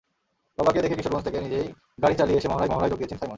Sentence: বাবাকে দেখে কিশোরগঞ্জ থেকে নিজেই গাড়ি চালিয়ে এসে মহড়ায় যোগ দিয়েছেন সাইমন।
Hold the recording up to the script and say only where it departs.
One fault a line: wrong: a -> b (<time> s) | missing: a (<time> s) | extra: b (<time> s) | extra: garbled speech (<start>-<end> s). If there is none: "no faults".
extra: মহড়ায় (2.7 s)